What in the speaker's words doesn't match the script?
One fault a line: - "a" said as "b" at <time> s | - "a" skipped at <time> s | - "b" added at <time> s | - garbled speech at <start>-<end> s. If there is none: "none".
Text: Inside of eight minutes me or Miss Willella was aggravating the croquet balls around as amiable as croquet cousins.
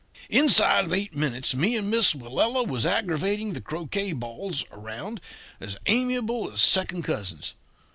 - "or" said as "and" at 1.8 s
- "croquet" said as "second" at 6.6 s